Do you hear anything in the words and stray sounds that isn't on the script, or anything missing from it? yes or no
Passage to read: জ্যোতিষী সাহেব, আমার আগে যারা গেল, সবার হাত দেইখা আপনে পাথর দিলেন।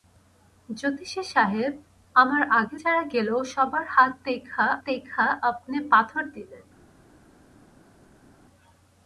yes